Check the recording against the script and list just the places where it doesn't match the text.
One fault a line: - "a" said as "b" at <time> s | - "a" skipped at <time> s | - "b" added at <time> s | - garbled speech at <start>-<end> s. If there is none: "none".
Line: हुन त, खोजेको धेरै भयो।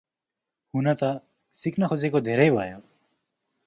- "सिक्न" added at 1.6 s